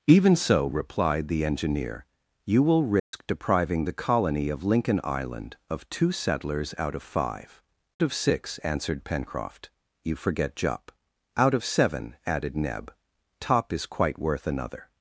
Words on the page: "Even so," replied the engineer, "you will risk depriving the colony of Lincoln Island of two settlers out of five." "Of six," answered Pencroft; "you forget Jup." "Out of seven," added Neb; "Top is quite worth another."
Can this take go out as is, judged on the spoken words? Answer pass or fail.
pass